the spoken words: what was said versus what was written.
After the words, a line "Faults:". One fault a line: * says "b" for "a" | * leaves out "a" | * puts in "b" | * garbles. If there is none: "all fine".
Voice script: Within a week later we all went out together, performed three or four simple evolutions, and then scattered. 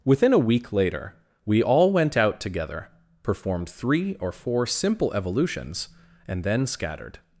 Within a week later we all went out together, performed three or four simple evolutions, and then scattered.
Faults:
all fine